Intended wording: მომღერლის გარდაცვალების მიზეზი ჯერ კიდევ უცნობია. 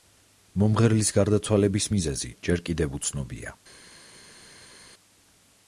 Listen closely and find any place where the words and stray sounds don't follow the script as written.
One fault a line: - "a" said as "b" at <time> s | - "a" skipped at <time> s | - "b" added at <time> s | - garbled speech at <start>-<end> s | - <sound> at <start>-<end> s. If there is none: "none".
none